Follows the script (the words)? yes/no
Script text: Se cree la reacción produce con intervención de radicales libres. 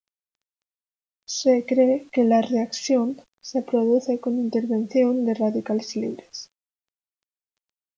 no